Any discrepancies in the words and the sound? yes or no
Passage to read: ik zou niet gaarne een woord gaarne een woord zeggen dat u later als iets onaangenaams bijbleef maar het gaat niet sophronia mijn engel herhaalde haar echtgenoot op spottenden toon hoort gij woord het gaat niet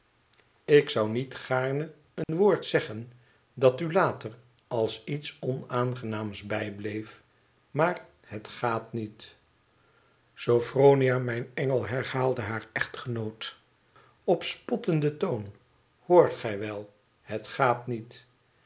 yes